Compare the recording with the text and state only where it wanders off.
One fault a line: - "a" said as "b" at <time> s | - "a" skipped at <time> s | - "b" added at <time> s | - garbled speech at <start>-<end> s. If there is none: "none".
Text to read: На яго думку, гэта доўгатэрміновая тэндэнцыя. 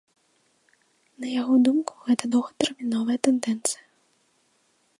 none